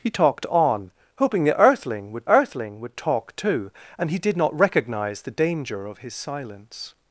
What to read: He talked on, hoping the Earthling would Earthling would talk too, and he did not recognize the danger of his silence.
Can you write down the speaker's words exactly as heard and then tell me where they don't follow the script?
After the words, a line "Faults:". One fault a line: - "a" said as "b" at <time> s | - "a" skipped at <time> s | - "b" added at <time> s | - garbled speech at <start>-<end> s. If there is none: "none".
He talked on, hoping the Earthling would Earthling would talk too, and he did not recognize the danger of his silence.
Faults:
none